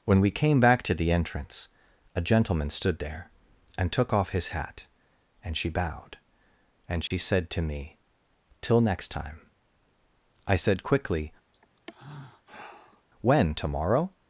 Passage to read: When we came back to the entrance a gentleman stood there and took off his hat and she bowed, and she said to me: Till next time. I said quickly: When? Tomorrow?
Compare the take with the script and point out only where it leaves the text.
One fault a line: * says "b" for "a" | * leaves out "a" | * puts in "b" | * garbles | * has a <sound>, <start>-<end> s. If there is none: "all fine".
* has a dropout, 7.1-7.1 s
* has a sigh, 11.5-13.1 s